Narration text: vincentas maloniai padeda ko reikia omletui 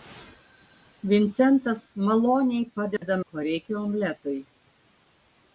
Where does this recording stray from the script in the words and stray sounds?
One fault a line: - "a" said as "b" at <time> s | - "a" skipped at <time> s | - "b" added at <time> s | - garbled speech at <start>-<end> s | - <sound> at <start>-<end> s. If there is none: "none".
- dropout at 3.0-3.0 s